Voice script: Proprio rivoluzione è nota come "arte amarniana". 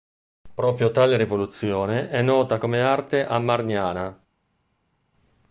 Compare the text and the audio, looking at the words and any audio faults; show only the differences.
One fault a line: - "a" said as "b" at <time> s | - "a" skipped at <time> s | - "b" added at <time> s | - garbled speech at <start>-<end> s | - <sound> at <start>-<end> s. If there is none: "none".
- "tale" added at 0.9 s